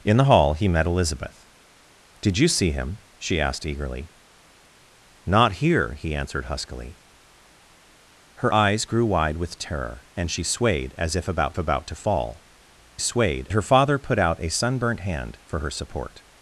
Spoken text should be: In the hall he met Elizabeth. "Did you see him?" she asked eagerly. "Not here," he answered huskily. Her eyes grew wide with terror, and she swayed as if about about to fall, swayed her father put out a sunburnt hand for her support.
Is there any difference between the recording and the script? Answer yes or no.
no